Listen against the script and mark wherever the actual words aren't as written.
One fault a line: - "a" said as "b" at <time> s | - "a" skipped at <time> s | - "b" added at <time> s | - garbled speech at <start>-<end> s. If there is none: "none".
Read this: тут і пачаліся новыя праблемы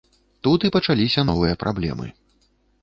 none